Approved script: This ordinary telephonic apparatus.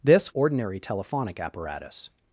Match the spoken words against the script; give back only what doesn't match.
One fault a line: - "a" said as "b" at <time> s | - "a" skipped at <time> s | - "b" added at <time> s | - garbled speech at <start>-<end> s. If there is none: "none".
none